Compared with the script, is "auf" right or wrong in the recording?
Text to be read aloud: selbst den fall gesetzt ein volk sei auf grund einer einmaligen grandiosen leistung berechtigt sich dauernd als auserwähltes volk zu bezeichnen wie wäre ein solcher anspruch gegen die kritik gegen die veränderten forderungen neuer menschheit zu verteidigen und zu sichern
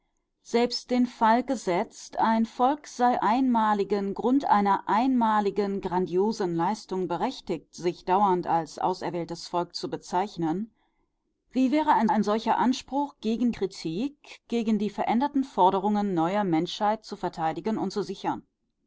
wrong